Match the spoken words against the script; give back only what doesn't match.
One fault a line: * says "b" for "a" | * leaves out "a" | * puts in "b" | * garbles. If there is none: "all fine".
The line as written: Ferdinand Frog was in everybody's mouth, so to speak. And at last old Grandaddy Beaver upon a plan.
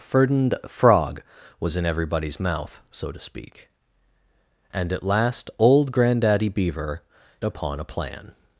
all fine